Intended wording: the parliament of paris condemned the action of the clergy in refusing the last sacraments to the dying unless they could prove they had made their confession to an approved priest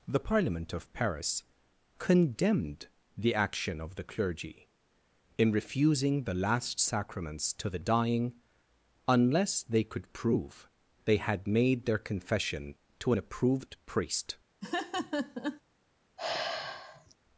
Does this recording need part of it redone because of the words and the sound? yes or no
yes